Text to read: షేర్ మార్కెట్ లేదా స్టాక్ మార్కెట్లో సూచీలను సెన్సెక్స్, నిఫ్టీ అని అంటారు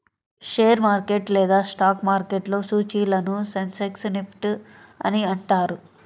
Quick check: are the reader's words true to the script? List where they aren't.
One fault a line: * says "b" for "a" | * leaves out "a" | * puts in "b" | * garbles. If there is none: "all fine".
all fine